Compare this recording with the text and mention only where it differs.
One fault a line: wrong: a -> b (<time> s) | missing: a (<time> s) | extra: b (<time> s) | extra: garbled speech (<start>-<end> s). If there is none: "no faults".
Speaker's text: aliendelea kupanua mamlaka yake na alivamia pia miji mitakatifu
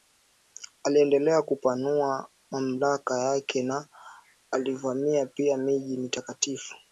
no faults